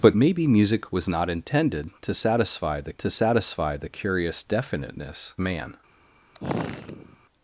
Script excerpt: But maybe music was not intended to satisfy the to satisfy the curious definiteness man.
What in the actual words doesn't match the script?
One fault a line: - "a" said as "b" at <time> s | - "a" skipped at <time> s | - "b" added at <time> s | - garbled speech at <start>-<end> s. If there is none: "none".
none